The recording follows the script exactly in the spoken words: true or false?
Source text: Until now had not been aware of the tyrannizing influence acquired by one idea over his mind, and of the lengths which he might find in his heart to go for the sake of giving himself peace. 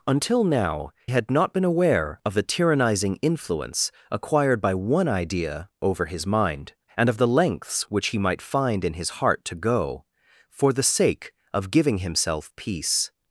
true